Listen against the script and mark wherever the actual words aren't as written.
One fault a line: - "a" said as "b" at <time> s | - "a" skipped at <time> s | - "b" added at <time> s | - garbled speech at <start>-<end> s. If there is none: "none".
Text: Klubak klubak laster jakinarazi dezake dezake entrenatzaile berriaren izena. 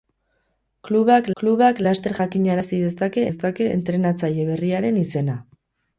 none